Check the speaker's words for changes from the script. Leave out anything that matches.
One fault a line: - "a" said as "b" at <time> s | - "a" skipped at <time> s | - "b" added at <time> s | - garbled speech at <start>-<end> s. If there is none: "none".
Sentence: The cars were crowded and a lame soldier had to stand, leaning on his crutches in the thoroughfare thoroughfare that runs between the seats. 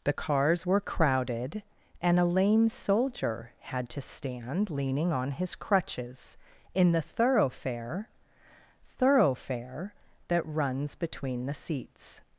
none